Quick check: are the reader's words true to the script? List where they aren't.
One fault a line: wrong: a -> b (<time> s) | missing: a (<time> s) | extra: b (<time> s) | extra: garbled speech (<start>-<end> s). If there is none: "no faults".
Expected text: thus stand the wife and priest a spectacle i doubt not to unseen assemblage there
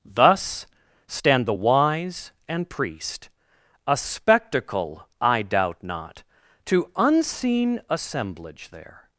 wrong: wife -> wise (1.5 s)